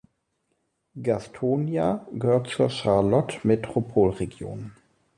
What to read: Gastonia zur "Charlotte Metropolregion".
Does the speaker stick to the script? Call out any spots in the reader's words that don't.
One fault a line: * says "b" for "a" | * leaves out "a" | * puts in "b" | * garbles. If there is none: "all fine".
* puts in "gehört"